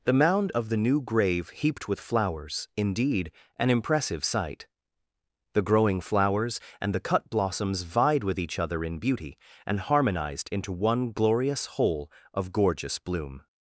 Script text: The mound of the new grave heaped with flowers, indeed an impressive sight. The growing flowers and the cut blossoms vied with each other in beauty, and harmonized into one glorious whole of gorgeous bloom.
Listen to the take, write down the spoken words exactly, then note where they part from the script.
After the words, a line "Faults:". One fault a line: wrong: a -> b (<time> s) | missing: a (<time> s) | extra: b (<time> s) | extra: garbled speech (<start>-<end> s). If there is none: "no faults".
The mound of the new grave heaped with flowers, indeed an impressive sight. The growing flowers and the cut blossoms vied with each other in beauty, and harmonized into one glorious whole of gorgeous bloom.
Faults:
no faults